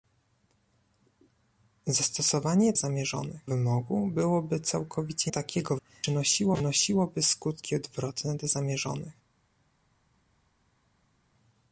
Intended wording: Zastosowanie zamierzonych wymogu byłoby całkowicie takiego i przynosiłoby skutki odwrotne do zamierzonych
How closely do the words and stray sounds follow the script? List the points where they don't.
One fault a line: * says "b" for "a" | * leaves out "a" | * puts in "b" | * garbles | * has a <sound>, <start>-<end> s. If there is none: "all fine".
all fine